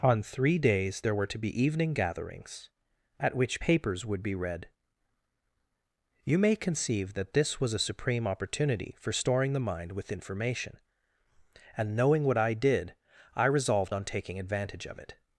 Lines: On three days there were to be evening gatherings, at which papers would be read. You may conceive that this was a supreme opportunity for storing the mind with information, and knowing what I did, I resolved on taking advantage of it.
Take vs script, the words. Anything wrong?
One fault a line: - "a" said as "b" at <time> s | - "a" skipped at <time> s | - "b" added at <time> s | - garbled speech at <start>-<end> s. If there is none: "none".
none